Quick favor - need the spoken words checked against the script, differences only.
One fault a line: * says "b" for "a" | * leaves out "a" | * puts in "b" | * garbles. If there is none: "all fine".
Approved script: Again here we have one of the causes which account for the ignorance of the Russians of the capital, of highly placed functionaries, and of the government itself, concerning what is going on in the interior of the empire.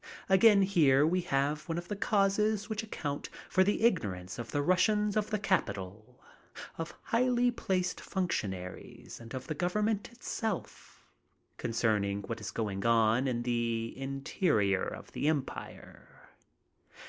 all fine